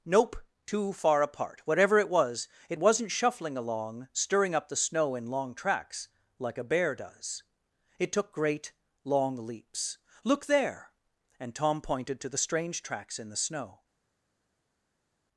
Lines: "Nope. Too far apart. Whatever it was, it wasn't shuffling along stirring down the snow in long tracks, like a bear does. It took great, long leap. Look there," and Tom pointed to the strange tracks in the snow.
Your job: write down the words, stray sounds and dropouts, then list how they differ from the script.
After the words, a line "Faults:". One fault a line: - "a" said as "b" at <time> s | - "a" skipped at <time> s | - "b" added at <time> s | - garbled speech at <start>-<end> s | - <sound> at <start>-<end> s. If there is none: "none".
"Nope. Too far apart. Whatever it was, it wasn't shuffling along stirring up the snow in long tracks, like a bear does. It took great, long leaps. Look there," and Tom pointed to the strange tracks in the snow.
Faults:
- "down" said as "up" at 4.5 s
- "leap" said as "leaps" at 9.4 s